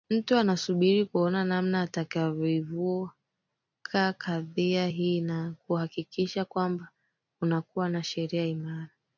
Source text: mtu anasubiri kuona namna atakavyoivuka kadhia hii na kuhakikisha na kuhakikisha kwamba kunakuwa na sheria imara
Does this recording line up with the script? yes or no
no